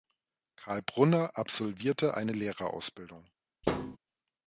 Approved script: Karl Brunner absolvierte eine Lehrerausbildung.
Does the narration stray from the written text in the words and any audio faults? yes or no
yes